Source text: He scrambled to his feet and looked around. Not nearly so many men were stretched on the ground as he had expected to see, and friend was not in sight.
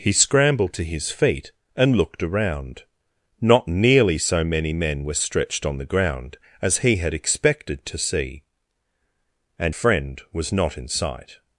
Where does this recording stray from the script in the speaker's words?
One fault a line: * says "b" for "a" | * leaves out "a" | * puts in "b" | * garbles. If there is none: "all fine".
all fine